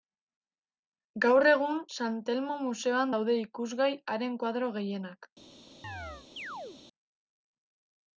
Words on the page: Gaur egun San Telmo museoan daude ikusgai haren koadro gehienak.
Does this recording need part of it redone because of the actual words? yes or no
no